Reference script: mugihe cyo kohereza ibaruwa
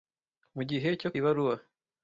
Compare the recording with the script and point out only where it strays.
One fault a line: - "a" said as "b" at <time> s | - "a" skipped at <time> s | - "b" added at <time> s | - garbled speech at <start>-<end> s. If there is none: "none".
- "kohereza" skipped at 1.1 s